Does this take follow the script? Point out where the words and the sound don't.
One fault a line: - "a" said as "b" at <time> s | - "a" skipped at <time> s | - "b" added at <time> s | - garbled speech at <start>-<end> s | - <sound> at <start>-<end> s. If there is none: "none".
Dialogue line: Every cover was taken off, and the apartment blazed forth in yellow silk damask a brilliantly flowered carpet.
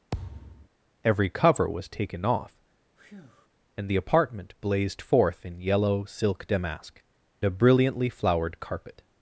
- thud at 0.1-0.7 s
- breath at 3.0-3.5 s